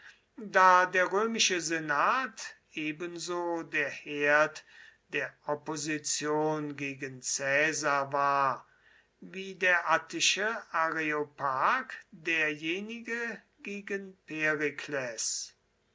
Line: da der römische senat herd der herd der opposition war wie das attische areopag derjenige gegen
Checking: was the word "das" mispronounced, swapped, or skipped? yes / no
yes